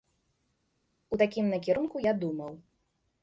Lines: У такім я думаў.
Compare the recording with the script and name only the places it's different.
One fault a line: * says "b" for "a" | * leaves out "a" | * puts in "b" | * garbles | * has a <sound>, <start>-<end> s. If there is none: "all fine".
* puts in "накірунку"